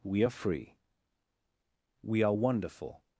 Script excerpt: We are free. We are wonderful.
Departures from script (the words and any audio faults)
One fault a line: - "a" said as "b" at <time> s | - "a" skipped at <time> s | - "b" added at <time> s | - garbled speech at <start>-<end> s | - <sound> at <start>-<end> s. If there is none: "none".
none